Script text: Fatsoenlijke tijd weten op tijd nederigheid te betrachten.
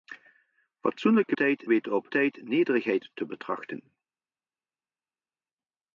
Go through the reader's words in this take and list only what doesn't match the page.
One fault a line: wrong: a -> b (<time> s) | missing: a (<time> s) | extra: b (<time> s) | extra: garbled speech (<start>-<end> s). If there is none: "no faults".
no faults